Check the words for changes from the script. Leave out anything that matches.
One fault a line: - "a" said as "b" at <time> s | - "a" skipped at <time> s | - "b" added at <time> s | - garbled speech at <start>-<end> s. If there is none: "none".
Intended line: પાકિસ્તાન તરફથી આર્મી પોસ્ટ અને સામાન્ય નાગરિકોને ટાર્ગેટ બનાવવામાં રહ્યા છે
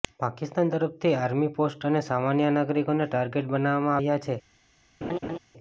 none